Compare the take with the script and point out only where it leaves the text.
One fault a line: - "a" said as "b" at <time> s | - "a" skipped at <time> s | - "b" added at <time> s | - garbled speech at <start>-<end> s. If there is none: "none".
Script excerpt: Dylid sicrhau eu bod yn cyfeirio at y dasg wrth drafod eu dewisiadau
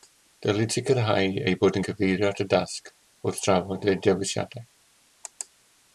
none